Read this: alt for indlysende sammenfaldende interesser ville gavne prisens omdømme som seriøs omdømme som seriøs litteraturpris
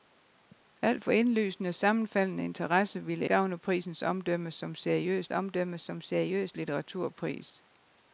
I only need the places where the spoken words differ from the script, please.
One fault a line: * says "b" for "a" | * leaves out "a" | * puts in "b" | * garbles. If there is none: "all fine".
all fine